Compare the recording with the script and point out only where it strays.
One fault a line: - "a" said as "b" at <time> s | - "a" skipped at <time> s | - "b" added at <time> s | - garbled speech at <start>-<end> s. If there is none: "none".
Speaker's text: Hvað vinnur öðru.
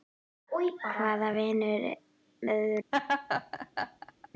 none